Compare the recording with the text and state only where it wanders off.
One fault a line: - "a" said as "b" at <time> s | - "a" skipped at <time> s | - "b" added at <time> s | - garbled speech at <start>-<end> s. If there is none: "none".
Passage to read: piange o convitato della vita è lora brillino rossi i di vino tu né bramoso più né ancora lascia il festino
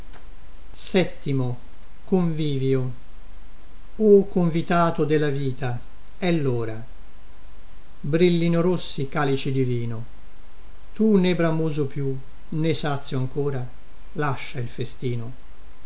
- "calici" added at 9.1 s
- "sazio" added at 12.7 s